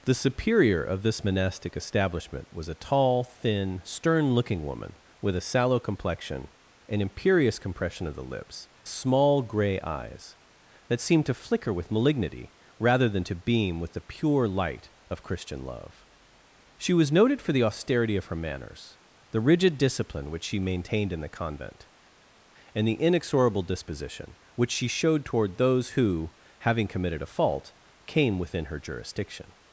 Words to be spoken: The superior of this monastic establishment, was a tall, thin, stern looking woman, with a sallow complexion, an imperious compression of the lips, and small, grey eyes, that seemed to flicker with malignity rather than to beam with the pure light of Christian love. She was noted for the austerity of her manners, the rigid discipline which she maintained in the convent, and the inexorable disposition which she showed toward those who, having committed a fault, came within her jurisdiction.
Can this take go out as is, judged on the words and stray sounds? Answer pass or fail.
fail